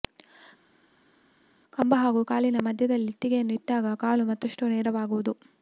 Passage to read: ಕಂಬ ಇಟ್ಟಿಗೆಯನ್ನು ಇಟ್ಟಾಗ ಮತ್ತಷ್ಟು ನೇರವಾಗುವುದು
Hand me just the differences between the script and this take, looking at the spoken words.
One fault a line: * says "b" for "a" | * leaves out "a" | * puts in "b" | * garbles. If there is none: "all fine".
* puts in "ಹಾಗೂ ಕಾಲಿನ ಮಧ್ಯದಲ್ಲಿ"
* puts in "ಕಾಲು"